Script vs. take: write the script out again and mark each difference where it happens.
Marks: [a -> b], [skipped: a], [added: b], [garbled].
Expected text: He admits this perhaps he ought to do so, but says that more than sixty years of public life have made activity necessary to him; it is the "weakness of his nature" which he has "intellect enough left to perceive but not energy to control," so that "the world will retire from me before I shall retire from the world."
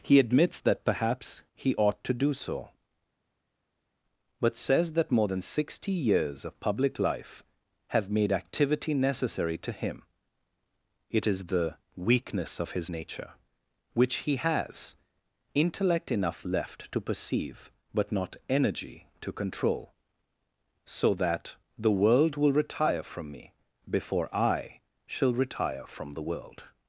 He admits [this -> that] perhaps he ought to do so, but says that more than sixty years of public life have made activity necessary to him; it is the "weakness of his nature" which he has "intellect enough left to perceive but not energy to control," so that "the world will retire from me before I shall retire from the world."